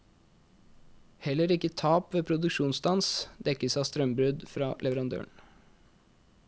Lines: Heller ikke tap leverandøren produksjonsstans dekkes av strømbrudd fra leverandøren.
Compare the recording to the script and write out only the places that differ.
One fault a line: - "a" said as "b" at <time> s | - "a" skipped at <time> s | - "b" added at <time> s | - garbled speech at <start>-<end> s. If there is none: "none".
- "leverandøren" said as "ved" at 2.1 s